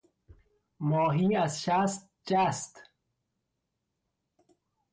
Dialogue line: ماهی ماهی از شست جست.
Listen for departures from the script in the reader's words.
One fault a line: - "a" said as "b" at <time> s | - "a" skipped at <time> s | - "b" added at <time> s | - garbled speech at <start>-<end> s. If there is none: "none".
- "ماهی" skipped at 1.4 s